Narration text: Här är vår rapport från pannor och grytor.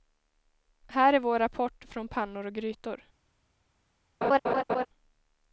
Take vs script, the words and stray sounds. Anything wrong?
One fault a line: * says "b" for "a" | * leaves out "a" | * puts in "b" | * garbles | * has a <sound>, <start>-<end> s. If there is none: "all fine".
* has a laugh, 4.2-4.9 s